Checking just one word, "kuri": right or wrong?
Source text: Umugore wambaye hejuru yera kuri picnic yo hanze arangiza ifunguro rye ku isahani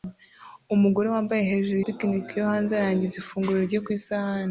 wrong